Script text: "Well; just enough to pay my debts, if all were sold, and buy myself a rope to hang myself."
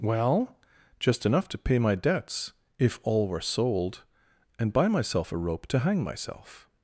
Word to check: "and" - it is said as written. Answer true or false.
true